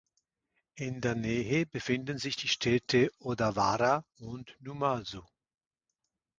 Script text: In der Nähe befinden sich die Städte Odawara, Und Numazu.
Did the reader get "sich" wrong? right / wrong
right